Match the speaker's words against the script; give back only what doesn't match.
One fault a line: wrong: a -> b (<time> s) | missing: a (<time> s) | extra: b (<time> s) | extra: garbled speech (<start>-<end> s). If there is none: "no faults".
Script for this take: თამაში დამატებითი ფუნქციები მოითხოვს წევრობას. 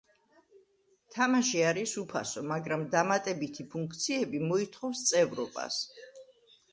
extra: არის უფასო მაგრამ (1.7 s)